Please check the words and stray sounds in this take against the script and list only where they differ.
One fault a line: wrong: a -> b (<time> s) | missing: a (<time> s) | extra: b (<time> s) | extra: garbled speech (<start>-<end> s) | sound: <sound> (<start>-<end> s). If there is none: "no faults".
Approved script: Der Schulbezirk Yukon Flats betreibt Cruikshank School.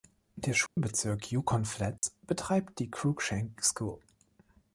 sound: dropout (0.7-0.8 s)
sound: dropout (2.0-2.0 s)
extra: die (2.8 s)